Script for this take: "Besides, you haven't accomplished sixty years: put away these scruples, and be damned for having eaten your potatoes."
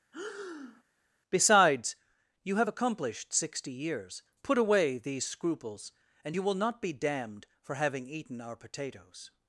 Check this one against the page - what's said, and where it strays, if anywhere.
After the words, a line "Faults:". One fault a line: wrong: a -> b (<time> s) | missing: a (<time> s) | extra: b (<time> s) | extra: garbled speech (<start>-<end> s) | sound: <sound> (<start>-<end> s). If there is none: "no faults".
"Besides, you have accomplished sixty years: put away these scruples, and you will not be damned for having eaten our potatoes."
Faults:
sound: breath (0.1-0.8 s)
wrong: haven't -> have (2.6 s)
extra: you will not (6.3 s)
wrong: your -> our (8.4 s)